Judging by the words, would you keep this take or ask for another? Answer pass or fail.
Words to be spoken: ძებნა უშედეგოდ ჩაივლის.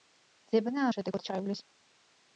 pass